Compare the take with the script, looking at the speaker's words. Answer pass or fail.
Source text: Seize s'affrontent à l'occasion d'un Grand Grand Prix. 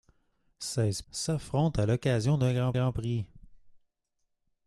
pass